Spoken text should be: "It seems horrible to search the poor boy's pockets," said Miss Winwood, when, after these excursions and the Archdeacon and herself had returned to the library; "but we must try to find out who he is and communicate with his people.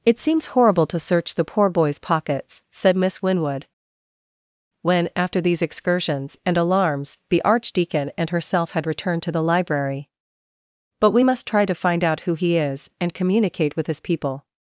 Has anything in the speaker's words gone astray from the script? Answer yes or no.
yes